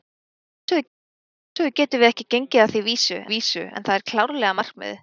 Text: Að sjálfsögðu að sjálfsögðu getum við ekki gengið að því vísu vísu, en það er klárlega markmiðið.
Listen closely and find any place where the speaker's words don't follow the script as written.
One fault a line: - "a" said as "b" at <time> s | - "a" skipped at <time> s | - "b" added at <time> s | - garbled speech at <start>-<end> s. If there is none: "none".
none